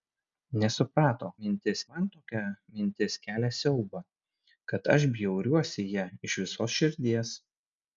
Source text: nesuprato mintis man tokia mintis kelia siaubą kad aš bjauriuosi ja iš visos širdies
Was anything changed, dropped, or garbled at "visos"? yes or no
no